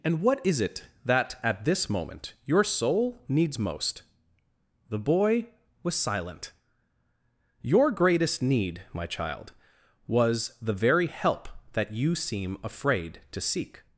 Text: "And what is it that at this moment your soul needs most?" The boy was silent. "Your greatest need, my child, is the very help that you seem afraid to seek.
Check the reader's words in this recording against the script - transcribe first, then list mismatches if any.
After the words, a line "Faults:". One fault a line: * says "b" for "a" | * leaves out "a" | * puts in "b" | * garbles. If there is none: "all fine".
"And what is it that at this moment your soul needs most?" The boy was silent. "Your greatest need, my child, was the very help that you seem afraid to seek.
Faults:
* says "was" for "is"